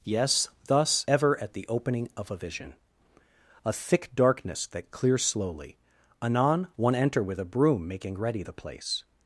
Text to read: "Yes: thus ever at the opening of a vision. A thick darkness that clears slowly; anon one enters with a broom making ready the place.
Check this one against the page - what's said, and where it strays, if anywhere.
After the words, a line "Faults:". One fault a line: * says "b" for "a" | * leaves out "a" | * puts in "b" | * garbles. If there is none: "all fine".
"Yes: thus ever at the opening of a vision. A thick darkness that clears slowly; anon one enter with a broom making ready the place.
Faults:
* says "enter" for "enters"